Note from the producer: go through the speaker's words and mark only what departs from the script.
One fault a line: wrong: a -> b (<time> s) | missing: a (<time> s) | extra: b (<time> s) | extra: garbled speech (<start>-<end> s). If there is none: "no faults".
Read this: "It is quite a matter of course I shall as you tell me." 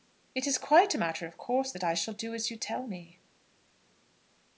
extra: that (1.7 s)
extra: do (2.1 s)